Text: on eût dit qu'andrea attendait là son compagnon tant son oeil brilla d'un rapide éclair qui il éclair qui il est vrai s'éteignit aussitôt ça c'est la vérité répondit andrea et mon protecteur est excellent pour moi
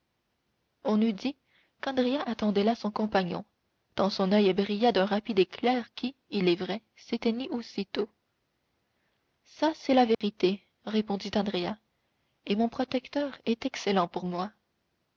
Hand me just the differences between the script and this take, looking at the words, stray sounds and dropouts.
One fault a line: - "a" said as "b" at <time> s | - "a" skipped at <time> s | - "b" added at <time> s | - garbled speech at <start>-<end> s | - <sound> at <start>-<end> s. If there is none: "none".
- "éclair qui il" skipped at 6.5 s
- dropout at 10.1-10.2 s